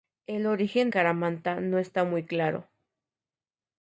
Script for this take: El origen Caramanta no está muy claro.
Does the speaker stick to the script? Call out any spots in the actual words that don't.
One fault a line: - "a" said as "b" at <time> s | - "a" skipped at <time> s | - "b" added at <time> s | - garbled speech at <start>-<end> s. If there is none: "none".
none